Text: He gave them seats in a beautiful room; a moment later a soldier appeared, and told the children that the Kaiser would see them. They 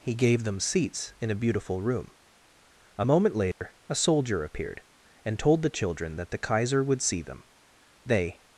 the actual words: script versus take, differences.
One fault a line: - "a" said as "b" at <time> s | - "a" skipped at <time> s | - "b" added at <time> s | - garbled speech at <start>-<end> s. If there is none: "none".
none